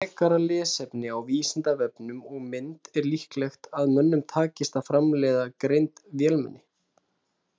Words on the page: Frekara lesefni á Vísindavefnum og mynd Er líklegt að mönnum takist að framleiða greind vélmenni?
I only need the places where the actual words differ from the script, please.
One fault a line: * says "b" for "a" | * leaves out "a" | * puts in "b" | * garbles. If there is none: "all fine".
all fine